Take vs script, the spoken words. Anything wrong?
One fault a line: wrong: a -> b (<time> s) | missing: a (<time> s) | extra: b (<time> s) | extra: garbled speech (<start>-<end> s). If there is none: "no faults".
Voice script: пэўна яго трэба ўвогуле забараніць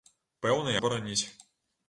missing: яго трэба ўвогуле (0.7 s)